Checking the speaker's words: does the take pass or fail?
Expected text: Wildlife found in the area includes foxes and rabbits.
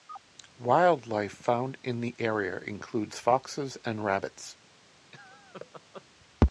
pass